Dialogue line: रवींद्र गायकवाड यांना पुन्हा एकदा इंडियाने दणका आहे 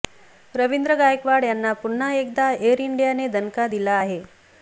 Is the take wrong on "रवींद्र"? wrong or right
right